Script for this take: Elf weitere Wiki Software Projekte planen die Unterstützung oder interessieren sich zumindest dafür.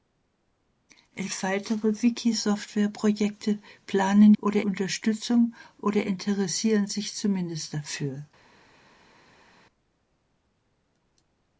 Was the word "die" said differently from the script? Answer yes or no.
yes